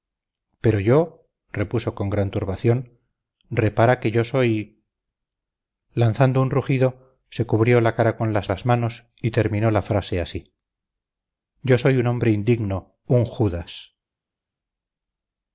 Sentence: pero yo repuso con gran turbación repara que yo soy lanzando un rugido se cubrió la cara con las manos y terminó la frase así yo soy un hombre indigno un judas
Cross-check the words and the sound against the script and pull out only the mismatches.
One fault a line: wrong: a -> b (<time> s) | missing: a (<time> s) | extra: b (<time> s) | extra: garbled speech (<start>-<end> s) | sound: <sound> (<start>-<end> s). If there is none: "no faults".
extra: las (8.5 s)